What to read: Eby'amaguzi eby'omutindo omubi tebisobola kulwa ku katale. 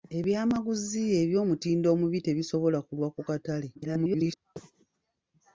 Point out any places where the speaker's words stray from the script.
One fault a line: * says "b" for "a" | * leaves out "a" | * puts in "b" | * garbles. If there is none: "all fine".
* garbles